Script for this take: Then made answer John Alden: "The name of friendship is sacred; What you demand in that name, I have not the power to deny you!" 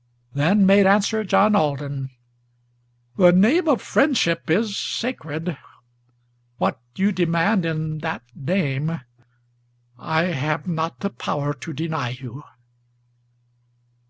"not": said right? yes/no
yes